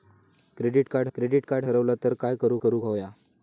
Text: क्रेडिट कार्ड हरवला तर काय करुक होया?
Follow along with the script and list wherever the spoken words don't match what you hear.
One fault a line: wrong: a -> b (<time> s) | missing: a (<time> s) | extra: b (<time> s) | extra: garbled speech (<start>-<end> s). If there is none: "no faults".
extra: क्रेडिट कार्ड (1.1 s)
extra: करुक (2.6 s)